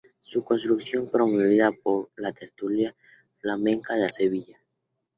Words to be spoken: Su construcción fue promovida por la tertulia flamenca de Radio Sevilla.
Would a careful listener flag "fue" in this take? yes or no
yes